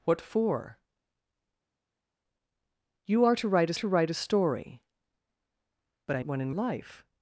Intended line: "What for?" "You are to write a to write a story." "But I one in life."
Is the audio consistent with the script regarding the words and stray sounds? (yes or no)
yes